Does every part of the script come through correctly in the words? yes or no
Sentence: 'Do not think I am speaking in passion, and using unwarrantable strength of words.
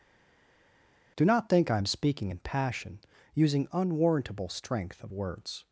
no